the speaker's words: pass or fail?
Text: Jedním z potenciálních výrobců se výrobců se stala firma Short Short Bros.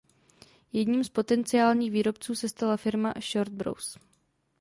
fail